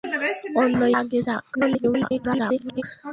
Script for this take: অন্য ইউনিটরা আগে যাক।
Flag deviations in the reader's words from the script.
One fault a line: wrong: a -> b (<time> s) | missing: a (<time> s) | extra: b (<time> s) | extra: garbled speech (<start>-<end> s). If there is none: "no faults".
missing: ইউনিটরা (0.8 s)
extra: garbled speech (1.5-2.8 s)